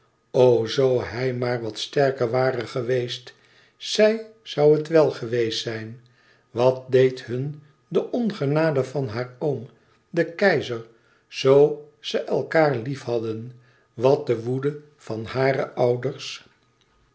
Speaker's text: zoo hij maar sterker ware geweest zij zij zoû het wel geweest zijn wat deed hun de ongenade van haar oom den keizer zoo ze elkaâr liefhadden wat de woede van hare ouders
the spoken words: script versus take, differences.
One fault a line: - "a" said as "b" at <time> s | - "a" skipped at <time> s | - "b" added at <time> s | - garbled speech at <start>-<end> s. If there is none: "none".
- "wat" added at 1.6 s
- "zij" skipped at 4.2 s